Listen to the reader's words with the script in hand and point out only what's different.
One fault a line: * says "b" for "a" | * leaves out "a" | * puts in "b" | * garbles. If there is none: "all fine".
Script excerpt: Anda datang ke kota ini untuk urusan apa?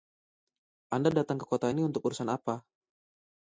all fine